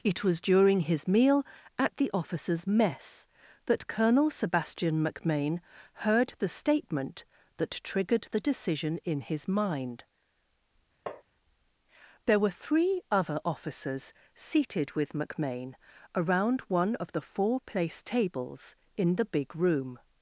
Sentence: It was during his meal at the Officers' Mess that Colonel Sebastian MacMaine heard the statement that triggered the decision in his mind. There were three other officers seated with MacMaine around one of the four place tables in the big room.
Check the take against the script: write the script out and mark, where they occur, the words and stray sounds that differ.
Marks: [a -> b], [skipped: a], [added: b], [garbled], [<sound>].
It was during his meal at the Officers' Mess that Colonel Sebastian MacMaine heard the statement that triggered the decision in his mind. [tap] There were three other officers seated with MacMaine around one of the four place tables in the big room.